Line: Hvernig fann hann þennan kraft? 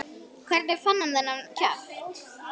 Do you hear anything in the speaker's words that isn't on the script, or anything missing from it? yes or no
no